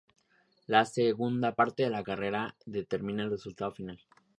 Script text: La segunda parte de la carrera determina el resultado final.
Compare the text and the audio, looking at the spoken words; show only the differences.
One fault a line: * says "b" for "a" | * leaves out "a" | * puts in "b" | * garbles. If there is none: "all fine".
all fine